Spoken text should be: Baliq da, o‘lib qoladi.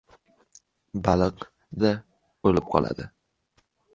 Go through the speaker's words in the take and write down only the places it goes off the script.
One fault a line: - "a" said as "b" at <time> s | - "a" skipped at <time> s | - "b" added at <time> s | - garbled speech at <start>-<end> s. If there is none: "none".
none